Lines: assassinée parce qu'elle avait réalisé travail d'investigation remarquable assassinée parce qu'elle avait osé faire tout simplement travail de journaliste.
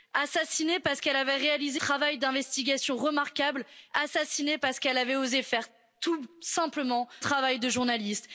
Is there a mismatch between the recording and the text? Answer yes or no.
no